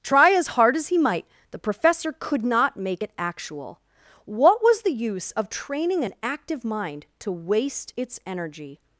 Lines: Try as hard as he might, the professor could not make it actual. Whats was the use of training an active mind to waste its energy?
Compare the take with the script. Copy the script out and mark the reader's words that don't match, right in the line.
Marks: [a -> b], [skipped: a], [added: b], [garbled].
Try as hard as he might, the professor could not make it actual. [Whats -> What] was the use of training an active mind to waste its energy?